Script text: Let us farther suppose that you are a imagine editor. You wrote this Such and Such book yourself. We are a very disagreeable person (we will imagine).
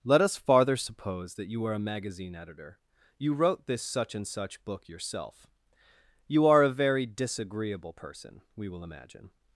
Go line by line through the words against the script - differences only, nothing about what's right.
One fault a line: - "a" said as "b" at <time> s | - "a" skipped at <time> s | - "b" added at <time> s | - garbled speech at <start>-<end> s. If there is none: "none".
- "imagine" said as "magazine" at 1.8 s
- "We" said as "You" at 6.3 s